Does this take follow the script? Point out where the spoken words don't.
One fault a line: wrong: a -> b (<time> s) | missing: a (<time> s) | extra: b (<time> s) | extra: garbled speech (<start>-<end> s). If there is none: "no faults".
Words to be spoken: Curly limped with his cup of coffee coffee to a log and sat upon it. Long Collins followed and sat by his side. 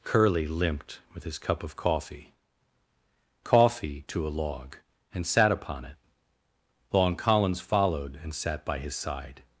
no faults